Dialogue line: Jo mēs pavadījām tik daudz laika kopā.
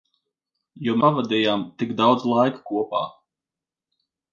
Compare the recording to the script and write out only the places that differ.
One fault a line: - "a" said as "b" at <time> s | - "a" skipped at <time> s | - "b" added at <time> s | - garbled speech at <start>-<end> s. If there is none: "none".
- "mēs" skipped at 0.9 s